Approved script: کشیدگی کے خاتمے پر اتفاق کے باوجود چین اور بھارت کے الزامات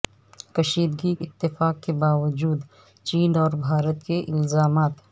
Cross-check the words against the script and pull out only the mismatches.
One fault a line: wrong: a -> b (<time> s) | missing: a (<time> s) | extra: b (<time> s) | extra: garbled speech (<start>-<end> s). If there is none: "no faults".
missing: کے خاتمے پر (1.1 s)